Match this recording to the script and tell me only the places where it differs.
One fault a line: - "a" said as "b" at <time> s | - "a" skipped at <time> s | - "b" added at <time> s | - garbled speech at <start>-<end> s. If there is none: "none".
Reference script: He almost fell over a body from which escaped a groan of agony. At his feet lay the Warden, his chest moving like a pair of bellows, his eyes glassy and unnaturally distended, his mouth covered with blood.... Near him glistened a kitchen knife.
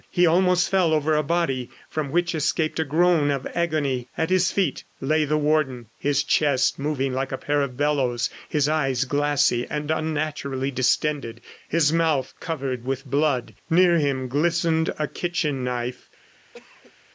none